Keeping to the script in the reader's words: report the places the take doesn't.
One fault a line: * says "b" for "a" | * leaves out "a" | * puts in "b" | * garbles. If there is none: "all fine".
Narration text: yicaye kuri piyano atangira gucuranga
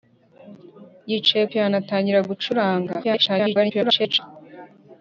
* leaves out "kuri"
* garbles